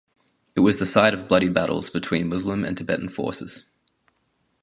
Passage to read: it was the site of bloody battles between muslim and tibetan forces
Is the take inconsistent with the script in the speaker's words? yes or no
no